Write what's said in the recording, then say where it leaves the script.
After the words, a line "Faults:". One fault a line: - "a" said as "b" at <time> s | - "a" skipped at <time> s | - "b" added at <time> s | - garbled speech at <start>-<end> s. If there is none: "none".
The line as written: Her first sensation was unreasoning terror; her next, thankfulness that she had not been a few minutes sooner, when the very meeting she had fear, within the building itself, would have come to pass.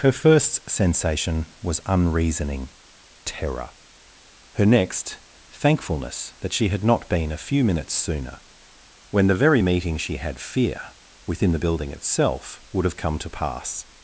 Her first sensation was unreasoning terror; her next, thankfulness that she had not been a few minutes sooner, when the very meeting she had fear, within the building itself, would have come to pass.
Faults:
none